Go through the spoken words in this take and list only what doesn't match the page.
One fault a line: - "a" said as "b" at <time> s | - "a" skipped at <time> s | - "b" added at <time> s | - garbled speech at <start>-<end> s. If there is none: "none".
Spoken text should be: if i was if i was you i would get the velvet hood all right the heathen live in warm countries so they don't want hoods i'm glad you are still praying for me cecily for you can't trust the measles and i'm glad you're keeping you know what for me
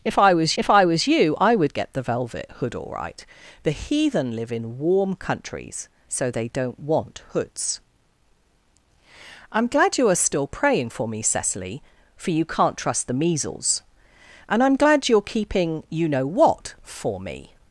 none